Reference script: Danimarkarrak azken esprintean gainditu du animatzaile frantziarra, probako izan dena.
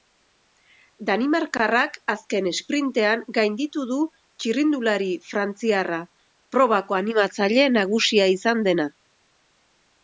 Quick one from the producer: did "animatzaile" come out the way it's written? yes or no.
no